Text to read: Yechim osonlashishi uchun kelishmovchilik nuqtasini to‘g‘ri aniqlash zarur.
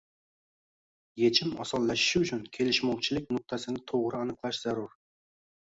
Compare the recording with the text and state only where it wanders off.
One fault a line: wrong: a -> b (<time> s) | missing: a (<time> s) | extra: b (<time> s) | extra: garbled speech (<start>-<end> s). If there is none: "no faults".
no faults